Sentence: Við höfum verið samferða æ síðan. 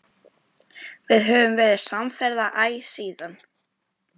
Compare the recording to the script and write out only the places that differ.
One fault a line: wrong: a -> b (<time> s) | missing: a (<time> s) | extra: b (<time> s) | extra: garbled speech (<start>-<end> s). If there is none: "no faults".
no faults